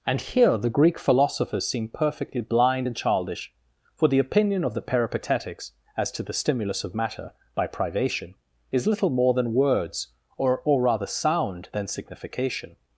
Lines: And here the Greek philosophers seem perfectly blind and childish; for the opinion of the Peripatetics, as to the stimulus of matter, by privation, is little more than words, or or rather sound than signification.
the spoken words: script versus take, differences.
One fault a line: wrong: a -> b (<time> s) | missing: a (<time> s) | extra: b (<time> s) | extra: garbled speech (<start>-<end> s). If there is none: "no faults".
no faults